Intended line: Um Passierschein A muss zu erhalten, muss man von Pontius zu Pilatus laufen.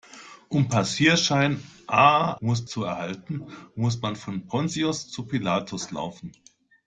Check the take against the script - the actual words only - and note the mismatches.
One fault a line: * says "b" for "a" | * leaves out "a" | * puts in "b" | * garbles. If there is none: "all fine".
all fine